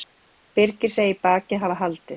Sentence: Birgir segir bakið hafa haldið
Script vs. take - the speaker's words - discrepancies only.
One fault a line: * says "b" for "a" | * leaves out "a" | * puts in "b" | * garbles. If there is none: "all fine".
all fine